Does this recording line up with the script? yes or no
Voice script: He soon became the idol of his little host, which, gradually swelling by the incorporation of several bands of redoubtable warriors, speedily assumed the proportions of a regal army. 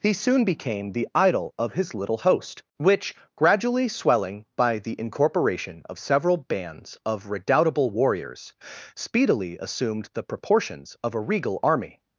yes